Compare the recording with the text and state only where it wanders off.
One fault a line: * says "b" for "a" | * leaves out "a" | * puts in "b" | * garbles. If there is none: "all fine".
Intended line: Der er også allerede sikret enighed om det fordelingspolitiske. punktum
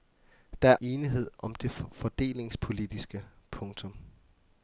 * leaves out "også allerede sikret"